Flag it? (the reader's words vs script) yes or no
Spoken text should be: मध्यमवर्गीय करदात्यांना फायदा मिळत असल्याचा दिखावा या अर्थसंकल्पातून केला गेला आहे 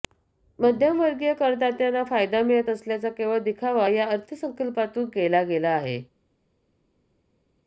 yes